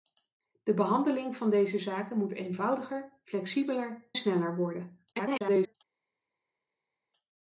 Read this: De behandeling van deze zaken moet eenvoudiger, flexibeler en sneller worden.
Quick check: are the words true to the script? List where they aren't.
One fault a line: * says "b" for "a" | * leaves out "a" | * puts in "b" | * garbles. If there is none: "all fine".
* leaves out "en"
* garbles